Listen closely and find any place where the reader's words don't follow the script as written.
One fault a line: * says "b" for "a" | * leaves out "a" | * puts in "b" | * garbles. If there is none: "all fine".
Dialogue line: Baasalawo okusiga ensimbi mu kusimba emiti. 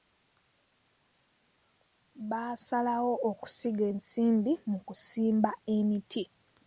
all fine